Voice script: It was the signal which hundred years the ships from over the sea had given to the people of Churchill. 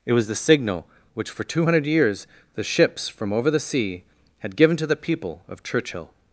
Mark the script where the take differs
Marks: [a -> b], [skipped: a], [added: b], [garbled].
It was the signal which [added: for two] hundred years the ships from over the sea had given to the people of Churchill.